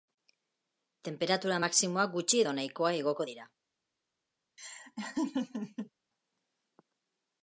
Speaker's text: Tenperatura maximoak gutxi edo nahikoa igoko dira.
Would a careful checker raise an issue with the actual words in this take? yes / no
no